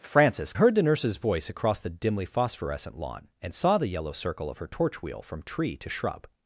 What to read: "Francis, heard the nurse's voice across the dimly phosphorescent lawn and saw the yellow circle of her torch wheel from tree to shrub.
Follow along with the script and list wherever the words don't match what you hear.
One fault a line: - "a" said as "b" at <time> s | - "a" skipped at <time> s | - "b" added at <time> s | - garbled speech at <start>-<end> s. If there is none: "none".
none